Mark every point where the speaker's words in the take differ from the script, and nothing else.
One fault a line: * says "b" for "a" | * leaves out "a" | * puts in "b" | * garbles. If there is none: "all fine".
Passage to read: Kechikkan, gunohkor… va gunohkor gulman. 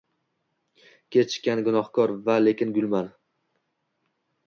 * says "lekin" for "gunohkor"